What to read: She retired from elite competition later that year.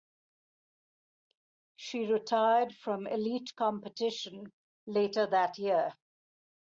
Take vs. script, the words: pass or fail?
pass